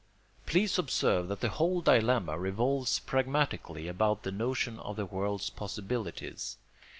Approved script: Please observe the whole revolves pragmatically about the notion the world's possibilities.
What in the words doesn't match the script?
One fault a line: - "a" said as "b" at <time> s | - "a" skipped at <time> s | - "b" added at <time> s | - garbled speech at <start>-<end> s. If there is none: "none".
- "that" added at 1.3 s
- "dilemma" added at 1.8 s
- "of" added at 4.8 s